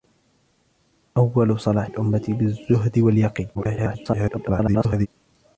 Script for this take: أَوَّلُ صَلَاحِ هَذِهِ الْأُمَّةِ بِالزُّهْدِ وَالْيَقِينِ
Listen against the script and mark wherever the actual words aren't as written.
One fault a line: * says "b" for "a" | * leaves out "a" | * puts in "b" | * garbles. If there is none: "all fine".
* leaves out "هَذِهِ"
* garbles